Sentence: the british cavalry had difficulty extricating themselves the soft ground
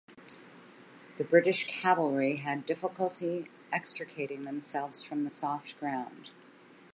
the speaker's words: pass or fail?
fail